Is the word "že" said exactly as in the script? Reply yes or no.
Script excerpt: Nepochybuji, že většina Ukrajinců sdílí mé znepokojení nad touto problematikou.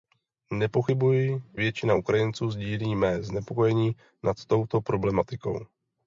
no